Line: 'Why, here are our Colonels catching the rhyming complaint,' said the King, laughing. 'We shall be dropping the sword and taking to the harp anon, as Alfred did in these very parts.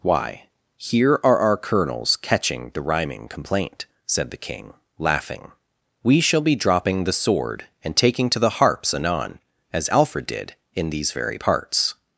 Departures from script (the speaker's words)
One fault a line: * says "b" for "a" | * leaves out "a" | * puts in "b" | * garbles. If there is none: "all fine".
* says "harps" for "harp"